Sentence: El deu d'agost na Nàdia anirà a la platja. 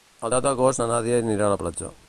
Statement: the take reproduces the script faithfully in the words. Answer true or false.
true